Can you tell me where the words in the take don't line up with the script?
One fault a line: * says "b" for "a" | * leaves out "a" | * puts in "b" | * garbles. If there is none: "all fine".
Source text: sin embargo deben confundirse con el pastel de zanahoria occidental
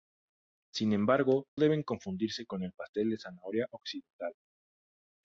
all fine